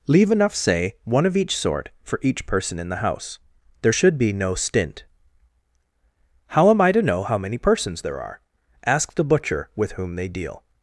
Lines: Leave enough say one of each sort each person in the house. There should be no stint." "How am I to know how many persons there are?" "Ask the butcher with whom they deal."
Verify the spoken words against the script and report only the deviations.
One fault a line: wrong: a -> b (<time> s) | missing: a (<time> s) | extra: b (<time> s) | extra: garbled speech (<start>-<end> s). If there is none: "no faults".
extra: for (2.0 s)